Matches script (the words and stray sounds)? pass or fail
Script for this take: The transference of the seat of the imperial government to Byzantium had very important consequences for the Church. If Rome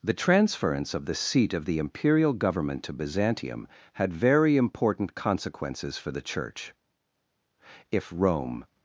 pass